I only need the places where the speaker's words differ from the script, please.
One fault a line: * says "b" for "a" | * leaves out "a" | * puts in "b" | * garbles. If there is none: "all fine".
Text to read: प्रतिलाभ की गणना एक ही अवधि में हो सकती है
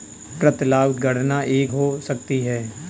* leaves out "की"
* leaves out "ही अवधि में"